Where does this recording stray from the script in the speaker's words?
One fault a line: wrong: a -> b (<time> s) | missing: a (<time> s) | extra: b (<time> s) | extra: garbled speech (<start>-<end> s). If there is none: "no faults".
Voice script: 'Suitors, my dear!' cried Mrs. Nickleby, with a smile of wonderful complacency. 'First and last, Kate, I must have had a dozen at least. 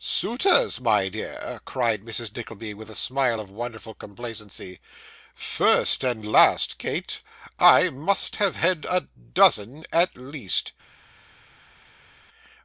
no faults